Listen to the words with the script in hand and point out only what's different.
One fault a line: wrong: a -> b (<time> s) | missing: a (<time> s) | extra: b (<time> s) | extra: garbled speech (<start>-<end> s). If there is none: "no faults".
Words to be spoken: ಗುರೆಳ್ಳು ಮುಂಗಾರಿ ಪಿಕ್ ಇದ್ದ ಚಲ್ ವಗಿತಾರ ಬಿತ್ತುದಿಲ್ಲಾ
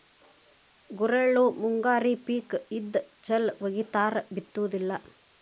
no faults